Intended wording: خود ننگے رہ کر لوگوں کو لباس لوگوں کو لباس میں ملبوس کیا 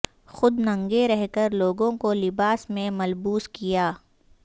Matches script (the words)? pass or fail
fail